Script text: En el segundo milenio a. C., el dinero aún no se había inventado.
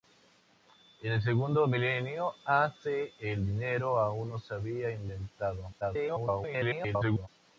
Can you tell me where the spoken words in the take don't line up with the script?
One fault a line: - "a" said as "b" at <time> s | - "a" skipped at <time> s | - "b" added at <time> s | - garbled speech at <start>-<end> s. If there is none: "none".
- garbled speech at 5.8-7.3 s